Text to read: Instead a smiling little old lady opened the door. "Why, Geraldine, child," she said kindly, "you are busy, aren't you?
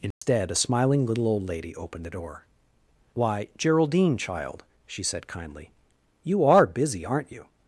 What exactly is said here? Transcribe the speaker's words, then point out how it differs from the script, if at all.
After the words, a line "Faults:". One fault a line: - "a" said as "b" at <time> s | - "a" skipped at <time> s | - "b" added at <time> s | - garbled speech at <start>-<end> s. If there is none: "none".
Instead a smiling little old lady opened the door. "Why, Geraldine, child," she said kindly, "you are busy, aren't you?
Faults:
none